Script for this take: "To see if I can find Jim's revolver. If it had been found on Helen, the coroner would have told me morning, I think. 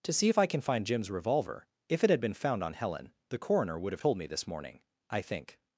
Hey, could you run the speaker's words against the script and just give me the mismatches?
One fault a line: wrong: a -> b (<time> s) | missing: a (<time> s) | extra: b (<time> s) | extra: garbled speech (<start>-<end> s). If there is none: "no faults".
extra: this (4.3 s)